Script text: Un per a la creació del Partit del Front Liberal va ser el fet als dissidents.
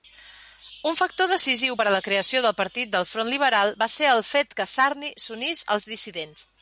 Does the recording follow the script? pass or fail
fail